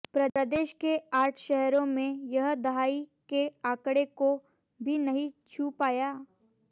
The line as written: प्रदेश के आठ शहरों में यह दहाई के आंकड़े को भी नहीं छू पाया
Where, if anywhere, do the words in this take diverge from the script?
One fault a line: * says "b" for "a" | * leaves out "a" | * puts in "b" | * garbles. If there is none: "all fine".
all fine